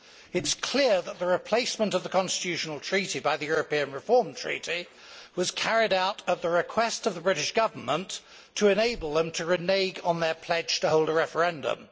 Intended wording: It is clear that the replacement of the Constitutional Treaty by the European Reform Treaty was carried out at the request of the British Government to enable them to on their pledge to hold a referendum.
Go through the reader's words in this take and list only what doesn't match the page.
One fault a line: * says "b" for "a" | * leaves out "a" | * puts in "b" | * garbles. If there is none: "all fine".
* puts in "renege"